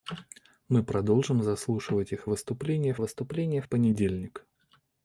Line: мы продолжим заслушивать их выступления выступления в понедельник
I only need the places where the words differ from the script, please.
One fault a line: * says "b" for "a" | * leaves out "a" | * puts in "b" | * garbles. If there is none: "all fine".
all fine